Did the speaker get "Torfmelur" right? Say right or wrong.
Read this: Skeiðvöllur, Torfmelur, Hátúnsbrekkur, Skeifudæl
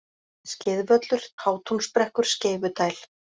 wrong